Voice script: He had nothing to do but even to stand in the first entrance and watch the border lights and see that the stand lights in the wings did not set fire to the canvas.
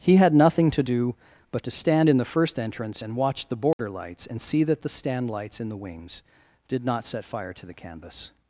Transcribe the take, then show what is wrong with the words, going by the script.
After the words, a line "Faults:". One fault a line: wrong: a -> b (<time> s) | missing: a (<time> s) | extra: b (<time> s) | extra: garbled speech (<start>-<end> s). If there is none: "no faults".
He had nothing to do but to stand in the first entrance and watch the border lights and see that the stand lights in the wings did not set fire to the canvas.
Faults:
missing: even (1.6 s)